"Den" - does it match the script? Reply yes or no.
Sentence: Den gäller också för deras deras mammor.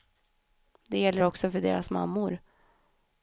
no